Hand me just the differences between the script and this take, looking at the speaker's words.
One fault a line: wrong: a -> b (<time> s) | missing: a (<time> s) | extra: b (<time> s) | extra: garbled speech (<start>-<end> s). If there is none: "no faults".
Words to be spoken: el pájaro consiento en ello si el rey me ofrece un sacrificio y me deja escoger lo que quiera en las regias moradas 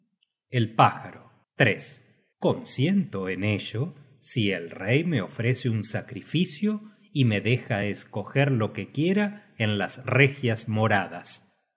no faults